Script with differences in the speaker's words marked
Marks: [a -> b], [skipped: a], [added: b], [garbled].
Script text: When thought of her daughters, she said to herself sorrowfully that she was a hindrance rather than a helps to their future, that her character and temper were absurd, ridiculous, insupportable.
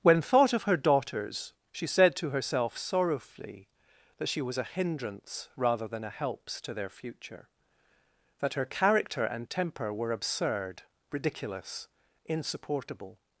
When thought of her daughters, she said to herself sorrowfully that she was a hindrance rather than a helps to their future, that her character and temper were absurd, ridiculous, insupportable.